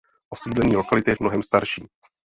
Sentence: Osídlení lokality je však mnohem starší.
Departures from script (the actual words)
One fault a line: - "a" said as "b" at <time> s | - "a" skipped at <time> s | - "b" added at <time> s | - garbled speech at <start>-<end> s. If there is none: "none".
- "však" skipped at 1.1 s